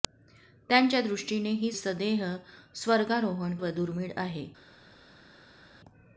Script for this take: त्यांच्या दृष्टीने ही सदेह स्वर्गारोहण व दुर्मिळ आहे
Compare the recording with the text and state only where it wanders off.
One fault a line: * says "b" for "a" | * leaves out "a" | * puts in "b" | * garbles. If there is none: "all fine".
all fine